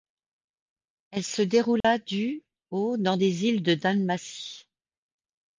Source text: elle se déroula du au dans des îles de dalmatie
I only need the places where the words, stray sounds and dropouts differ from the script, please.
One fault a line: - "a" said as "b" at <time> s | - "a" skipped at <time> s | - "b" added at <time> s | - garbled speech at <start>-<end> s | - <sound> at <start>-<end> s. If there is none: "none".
- dropout at 1.8-1.8 s